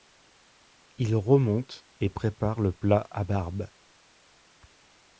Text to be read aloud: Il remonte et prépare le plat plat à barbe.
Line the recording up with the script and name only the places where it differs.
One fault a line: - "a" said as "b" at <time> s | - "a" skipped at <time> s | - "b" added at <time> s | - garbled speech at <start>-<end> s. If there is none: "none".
- "plat" skipped at 3.1 s